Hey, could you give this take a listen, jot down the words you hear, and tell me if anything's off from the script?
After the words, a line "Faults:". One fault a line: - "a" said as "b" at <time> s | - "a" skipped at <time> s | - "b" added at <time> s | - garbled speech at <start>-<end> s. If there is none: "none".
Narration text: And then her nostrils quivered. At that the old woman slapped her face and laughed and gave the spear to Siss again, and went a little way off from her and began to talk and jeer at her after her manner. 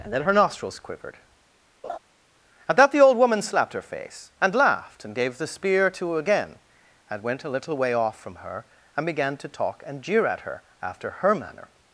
And then her nostrils quivered. At that the old woman slapped her face and laughed and gave the spear to again, and went a little way off from her and began to talk and jeer at her after her manner.
Faults:
- "Siss" skipped at 6.2 s